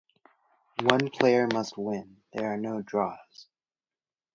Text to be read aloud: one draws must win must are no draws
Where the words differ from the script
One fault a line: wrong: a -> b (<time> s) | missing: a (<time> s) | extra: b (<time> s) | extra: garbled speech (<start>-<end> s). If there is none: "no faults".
wrong: draws -> player (1.1 s)
wrong: must -> there (2.3 s)